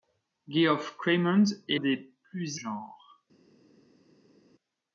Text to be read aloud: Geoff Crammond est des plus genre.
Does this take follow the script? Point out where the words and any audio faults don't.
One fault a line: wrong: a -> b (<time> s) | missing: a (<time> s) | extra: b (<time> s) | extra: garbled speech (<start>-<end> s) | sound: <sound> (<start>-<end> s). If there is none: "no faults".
no faults